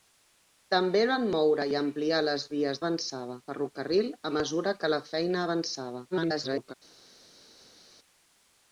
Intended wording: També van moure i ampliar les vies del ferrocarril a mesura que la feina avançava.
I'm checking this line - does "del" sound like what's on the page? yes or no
no